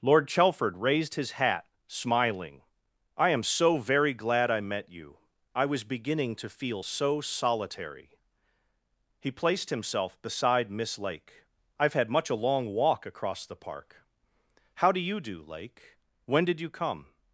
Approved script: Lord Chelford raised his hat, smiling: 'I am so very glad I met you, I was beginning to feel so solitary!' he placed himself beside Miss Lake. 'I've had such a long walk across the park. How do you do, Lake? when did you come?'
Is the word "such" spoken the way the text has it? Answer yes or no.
no